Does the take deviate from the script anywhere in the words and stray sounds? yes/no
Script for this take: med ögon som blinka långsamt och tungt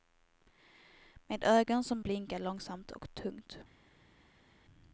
no